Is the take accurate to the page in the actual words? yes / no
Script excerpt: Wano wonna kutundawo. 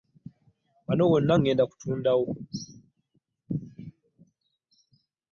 no